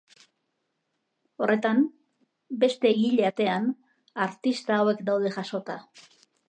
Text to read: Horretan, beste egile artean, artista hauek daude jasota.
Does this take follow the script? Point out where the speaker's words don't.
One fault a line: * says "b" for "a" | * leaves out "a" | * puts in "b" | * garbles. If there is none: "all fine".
all fine